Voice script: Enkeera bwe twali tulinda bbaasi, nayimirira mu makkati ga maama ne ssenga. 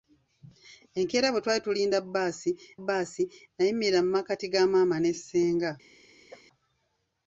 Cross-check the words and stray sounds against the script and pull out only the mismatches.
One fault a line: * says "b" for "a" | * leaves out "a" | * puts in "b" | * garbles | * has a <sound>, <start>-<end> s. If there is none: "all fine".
* puts in "bbaasi"
* has a cough, 6.3-6.4 s